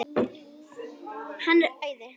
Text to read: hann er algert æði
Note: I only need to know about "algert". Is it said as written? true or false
false